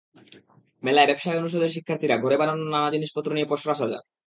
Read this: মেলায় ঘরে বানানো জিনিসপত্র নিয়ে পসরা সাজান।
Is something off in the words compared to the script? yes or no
yes